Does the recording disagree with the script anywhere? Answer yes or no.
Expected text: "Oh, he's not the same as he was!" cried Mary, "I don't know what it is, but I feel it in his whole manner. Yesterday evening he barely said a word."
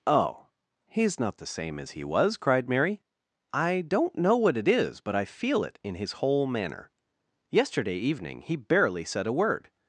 no